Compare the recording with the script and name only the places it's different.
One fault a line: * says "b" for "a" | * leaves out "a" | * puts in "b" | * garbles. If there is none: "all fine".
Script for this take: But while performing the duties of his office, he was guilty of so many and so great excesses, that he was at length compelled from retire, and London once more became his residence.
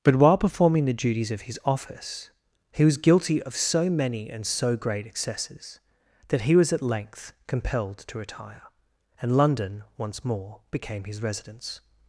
* says "to" for "from"